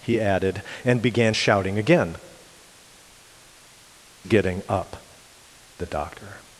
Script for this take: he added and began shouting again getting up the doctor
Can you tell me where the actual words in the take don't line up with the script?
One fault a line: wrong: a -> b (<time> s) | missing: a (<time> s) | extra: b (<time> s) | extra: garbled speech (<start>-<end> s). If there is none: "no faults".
no faults